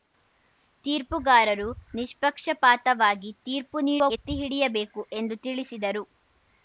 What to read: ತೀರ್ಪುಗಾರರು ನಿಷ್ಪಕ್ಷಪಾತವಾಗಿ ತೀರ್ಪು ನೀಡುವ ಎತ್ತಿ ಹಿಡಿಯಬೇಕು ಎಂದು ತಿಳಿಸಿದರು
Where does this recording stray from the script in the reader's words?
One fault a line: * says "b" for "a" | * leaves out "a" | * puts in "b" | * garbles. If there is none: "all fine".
all fine